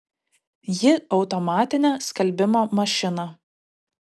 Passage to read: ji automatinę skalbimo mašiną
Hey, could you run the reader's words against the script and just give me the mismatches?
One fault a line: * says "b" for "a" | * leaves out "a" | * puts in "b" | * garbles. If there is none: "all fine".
all fine